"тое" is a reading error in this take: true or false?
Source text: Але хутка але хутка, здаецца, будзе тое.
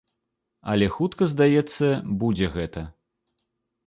true